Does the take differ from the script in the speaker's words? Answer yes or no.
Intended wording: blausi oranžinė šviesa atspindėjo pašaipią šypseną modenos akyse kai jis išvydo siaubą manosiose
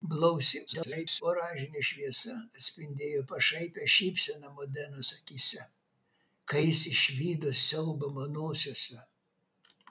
yes